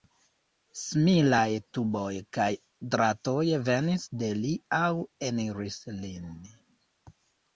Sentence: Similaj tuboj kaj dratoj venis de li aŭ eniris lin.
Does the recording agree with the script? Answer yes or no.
yes